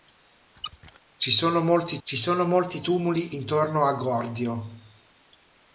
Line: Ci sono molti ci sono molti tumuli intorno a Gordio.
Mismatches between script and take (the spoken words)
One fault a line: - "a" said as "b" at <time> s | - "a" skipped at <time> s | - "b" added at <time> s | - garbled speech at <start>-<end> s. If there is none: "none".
none